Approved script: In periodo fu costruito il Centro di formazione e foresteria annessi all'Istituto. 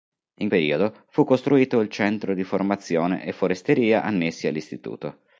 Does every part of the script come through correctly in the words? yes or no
yes